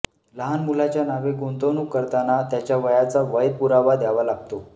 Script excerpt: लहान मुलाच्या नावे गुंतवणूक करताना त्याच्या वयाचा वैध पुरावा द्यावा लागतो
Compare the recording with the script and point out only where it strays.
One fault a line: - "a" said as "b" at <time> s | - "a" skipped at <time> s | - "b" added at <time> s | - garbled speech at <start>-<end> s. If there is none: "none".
none